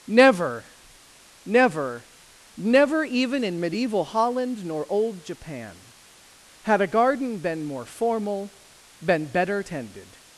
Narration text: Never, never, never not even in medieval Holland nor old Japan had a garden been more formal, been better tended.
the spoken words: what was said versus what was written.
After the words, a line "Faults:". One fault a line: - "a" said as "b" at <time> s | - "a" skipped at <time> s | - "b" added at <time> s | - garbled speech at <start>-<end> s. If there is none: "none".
Never, never, never even in medieval Holland nor old Japan had a garden been more formal, been better tended.
Faults:
- "not" skipped at 3.0 s